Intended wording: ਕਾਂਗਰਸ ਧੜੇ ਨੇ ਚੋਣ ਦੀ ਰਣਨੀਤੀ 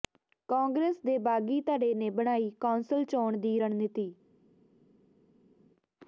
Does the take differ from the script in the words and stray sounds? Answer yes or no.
yes